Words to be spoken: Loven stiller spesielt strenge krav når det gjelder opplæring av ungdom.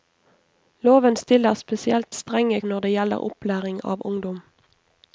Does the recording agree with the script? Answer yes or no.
no